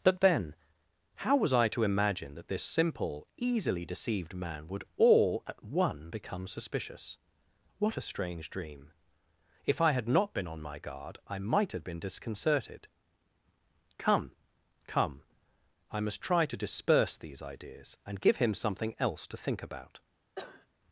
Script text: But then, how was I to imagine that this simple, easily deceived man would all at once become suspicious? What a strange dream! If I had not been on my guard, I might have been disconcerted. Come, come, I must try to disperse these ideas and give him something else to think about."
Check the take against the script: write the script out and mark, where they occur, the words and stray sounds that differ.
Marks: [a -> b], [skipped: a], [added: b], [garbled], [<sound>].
But then, how was I to imagine that this simple, easily deceived man would all at [once -> one] become suspicious? What a strange dream! If I had not been on my guard, I might have been disconcerted. Come, come, I must try to disperse these ideas and give him something else to think about." [cough]